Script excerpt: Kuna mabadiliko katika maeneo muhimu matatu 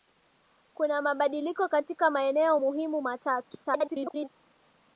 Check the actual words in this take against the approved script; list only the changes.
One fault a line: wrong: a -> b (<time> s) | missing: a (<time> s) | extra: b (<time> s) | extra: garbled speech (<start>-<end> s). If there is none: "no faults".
extra: garbled speech (3.6-4.3 s)